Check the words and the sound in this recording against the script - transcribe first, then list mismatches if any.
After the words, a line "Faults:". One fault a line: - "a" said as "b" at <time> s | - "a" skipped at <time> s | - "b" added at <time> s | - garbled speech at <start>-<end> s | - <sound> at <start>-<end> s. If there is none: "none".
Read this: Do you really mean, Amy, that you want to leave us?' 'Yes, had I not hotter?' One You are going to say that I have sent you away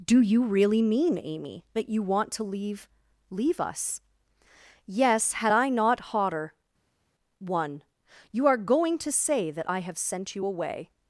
Do you really mean, Amy, that you want to leave leave us?' 'Yes, had I not hotter?' One You are going to say that I have sent you away
Faults:
- "leave" added at 3.3 s